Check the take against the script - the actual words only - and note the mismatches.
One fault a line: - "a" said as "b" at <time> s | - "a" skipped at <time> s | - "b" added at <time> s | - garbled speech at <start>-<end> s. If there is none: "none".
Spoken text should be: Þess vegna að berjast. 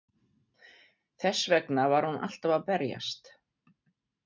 - "var hún alltaf" added at 1.9 s